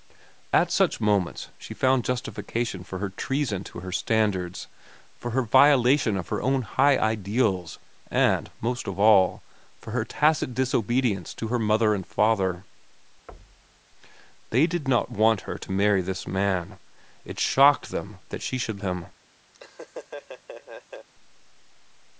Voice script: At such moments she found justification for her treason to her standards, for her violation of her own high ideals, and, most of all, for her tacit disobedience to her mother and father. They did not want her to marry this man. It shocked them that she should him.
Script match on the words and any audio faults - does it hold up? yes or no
no